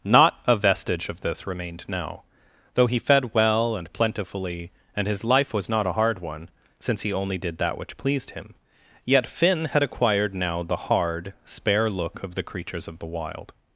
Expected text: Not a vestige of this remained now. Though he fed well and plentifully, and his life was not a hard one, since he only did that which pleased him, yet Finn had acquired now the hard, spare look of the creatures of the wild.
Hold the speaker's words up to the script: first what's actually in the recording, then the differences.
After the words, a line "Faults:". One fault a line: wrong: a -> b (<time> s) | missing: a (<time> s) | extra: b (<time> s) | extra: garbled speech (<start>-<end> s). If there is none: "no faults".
Not a vestige of this remained now. Though he fed well and plentifully, and his life was not a hard one, since he only did that which pleased him, yet Finn had acquired now the hard, spare look of the creatures of the wild.
Faults:
no faults